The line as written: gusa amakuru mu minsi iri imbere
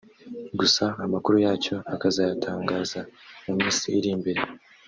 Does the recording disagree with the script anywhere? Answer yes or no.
yes